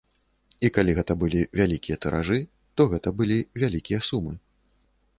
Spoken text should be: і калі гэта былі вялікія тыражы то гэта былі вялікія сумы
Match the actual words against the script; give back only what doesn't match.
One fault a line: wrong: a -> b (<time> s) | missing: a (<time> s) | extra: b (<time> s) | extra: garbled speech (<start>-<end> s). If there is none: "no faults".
no faults